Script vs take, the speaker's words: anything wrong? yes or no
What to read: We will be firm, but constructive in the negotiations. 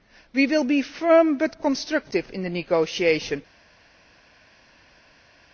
no